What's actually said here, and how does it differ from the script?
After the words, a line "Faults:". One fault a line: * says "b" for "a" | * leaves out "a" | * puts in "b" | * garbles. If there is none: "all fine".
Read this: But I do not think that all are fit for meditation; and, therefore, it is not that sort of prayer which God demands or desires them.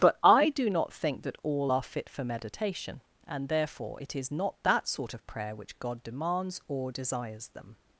But I do not think that all are fit for meditation; and, therefore, it is not that sort of prayer which God demands or desires them.
Faults:
all fine